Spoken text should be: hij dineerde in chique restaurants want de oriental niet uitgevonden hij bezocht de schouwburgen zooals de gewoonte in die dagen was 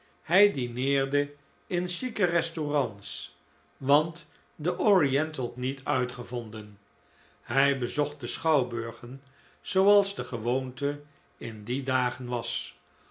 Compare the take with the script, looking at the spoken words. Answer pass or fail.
pass